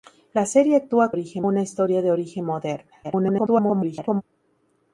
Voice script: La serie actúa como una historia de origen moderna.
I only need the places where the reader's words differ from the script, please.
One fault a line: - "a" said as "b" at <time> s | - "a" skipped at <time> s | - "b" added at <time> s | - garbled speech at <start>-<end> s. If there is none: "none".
- "como" said as "origen" at 1.1 s
- garbled speech at 3.0-4.2 s